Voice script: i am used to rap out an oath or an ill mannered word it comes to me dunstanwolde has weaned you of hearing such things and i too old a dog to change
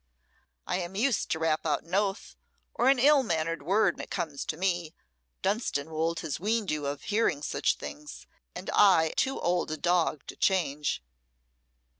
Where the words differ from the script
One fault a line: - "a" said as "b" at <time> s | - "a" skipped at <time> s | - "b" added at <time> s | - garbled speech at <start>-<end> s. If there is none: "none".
none